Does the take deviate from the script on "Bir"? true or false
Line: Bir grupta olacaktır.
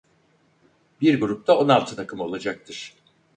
false